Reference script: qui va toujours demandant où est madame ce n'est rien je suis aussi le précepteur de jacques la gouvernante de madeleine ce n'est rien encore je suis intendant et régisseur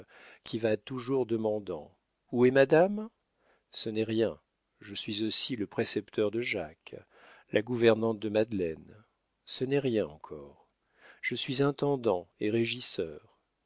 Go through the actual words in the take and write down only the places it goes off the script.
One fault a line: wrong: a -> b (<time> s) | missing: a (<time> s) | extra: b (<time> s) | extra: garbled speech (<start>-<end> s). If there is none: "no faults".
no faults